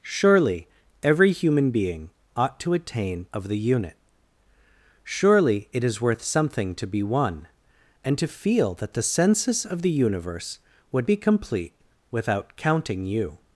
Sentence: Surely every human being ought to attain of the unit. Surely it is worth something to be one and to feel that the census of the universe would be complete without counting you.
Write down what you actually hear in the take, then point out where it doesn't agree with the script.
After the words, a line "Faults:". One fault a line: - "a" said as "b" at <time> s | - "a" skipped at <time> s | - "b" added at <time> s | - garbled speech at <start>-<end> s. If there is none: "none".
Surely every human being ought to attain of the unit. Surely it is worth something to be one and to feel that the census of the universe would be complete without counting you.
Faults:
none